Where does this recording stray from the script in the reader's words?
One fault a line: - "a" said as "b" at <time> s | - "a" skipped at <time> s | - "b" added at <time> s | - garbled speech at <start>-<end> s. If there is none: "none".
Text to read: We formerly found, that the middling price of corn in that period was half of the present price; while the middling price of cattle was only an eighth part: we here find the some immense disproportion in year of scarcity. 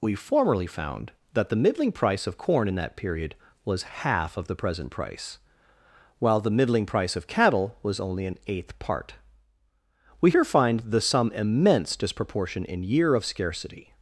none